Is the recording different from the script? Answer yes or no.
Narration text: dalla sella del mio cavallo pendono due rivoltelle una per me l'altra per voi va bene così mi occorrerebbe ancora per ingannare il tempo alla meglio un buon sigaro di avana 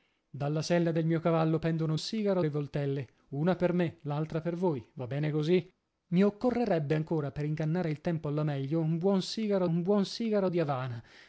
yes